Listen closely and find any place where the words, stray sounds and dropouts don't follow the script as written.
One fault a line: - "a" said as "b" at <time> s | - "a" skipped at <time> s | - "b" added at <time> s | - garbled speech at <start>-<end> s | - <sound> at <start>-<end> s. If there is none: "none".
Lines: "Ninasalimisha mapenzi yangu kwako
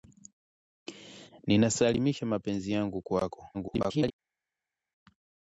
- garbled speech at 3.5-4.1 s